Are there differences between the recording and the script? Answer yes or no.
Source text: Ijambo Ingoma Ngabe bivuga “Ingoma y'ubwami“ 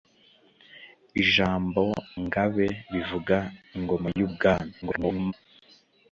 yes